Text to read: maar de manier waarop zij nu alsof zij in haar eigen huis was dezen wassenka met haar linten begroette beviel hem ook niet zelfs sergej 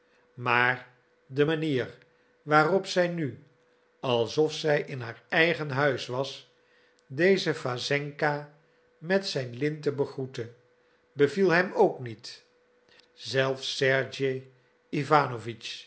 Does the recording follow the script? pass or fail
fail